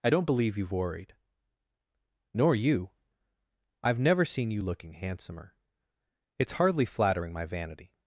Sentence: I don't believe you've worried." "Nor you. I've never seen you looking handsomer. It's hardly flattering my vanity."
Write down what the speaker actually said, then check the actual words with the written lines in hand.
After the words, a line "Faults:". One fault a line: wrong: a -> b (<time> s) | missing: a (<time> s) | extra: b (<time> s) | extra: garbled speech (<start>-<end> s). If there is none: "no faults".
I don't believe you've worried." "Nor you. I've never seen you looking handsomer. It's hardly flattering my vanity."
Faults:
no faults